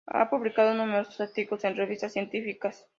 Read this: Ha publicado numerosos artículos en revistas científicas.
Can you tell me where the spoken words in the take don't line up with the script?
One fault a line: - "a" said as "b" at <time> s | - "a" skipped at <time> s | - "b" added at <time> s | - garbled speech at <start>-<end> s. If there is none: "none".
none